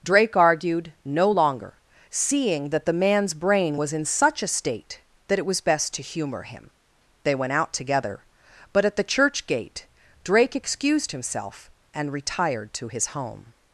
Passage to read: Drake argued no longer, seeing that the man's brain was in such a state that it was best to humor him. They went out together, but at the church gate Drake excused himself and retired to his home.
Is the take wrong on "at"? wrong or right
right